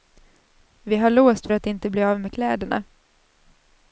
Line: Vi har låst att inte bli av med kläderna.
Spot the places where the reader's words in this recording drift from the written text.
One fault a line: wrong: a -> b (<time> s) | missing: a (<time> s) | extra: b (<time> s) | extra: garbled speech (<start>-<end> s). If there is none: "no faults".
no faults